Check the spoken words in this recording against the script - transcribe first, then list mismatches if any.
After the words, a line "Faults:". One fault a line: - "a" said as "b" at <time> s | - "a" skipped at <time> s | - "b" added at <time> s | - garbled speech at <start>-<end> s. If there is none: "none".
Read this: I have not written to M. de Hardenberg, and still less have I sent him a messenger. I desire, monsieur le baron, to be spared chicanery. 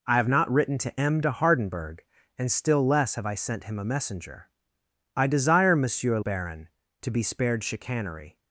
I have not written to M. de Hardenberg, and still less have I sent him a messenger. I desire, monsieur baron, to be spared chicanery.
Faults:
- "le" skipped at 6.2 s